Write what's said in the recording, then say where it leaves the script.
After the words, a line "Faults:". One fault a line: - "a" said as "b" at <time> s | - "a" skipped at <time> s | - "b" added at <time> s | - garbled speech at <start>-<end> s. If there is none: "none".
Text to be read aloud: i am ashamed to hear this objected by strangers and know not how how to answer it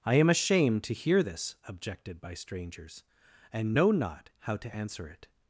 i am ashamed to hear this objected by strangers and know not how to answer it
Faults:
- "how" skipped at 4.6 s